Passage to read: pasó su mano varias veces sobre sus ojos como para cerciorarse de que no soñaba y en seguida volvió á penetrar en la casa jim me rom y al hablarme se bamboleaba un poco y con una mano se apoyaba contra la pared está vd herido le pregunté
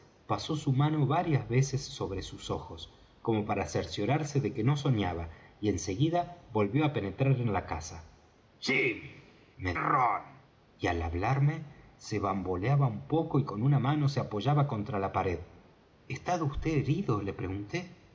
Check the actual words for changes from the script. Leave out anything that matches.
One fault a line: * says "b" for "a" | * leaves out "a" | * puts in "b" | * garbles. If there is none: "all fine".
all fine